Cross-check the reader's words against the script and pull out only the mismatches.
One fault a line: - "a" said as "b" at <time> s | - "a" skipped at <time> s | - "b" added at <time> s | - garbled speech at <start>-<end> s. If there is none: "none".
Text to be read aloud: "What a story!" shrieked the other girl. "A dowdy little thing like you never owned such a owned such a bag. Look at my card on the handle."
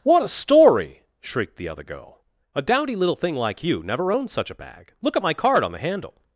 - "owned such a" skipped at 4.6 s